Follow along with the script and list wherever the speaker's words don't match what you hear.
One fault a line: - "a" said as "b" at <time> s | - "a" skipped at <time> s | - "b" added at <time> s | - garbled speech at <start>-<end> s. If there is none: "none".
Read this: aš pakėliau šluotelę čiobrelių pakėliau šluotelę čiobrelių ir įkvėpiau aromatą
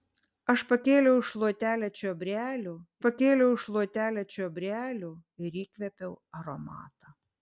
none